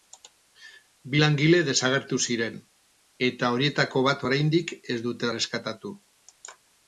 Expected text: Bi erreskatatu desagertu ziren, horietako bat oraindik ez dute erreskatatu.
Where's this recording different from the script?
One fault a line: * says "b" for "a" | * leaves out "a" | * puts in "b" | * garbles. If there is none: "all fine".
* says "langile" for "erreskatatu"
* puts in "eta"